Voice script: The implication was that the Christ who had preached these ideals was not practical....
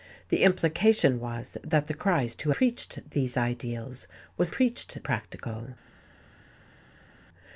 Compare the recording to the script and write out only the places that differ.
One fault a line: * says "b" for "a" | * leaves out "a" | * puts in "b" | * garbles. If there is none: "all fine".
* leaves out "had"
* says "preached" for "not"